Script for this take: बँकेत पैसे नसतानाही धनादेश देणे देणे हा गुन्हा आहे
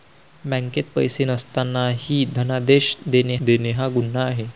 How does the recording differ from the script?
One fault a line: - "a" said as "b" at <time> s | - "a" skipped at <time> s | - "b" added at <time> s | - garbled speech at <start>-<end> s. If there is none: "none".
none